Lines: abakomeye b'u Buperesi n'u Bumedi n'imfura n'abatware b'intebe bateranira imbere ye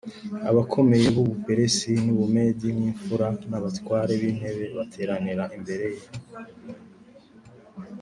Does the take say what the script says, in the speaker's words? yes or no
yes